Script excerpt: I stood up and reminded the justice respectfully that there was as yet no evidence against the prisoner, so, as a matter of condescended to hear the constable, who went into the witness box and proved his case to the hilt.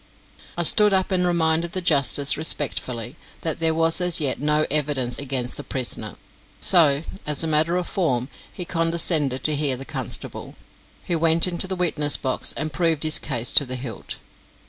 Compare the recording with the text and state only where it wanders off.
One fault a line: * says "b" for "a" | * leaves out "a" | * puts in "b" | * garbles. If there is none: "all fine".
* puts in "form he"